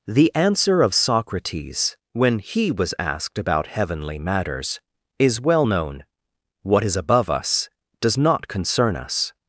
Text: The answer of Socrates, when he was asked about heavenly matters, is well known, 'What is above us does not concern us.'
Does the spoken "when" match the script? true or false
true